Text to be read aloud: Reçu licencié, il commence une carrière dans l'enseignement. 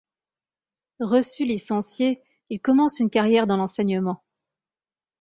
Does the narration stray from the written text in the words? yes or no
no